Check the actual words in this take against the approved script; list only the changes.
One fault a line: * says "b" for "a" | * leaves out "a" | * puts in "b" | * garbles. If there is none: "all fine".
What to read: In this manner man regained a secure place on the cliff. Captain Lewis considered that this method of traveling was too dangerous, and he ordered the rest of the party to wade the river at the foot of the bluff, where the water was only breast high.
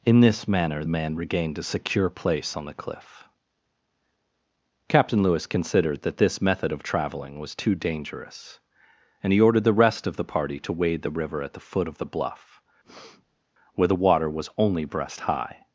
all fine